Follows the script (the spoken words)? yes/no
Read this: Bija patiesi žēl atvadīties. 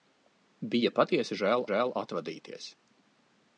no